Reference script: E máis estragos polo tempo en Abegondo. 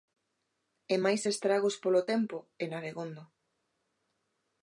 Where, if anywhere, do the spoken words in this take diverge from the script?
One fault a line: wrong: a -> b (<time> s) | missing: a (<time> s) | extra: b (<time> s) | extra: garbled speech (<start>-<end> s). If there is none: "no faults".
no faults